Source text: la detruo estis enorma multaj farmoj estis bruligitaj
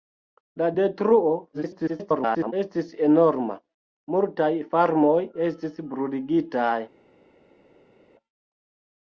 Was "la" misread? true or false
false